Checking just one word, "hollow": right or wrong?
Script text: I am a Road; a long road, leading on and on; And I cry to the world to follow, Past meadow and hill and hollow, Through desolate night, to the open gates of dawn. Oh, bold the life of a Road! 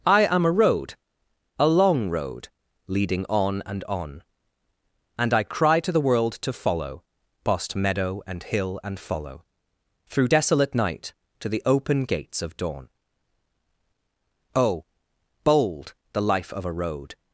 wrong